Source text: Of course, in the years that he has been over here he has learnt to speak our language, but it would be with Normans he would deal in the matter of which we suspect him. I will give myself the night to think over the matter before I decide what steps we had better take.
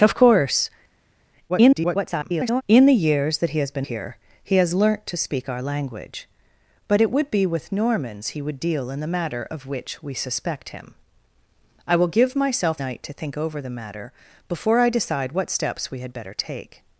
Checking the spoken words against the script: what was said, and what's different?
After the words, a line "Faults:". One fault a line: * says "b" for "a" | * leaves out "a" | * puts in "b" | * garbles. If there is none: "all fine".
Of course, [garbled] in the years that he has been here he has learnt to speak our language, but it would be with Normans he would deal in the matter of which we suspect him. I will give myself night to think over the matter before I decide what steps we had better take.
Faults:
* garbles
* leaves out "over"
* leaves out "the"